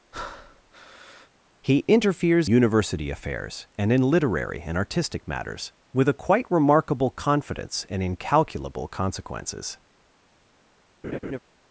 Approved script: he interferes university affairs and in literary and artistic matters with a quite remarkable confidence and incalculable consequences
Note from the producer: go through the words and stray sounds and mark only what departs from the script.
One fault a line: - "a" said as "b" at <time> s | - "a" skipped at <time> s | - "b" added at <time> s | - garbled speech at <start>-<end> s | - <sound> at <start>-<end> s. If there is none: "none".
- breath at 0.1-1.3 s
- laugh at 11.0-11.4 s